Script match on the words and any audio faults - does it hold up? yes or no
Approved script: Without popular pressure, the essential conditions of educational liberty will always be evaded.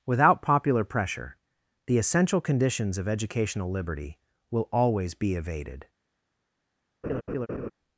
no